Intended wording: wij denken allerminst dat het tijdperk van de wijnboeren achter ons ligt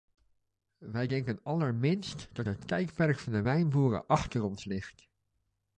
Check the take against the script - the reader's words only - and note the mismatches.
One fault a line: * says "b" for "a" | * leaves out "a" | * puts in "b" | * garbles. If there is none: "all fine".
all fine